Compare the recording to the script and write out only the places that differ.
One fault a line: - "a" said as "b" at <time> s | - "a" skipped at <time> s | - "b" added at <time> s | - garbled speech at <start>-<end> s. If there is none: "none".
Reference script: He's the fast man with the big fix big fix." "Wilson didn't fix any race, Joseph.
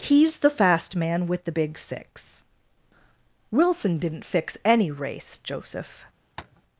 - "big fix" skipped at 2.4 s